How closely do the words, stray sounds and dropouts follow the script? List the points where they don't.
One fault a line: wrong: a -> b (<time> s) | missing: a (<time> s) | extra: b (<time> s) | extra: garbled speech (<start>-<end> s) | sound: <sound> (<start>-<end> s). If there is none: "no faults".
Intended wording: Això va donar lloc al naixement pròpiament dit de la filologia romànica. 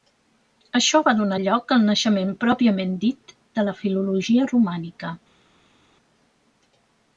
no faults